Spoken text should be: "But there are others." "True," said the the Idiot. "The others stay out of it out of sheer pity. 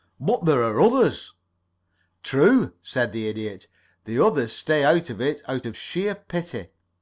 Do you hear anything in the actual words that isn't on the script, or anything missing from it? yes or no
yes